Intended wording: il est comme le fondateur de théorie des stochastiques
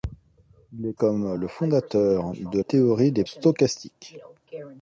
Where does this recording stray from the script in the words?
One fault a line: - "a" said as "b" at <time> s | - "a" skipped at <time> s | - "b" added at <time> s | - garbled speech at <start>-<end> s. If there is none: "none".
none